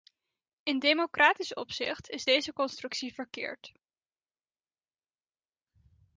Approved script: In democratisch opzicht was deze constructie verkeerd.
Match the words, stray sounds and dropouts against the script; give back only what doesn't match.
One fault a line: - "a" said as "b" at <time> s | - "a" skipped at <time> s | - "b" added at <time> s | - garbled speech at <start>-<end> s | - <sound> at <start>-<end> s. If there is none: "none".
- "was" said as "is" at 2.1 s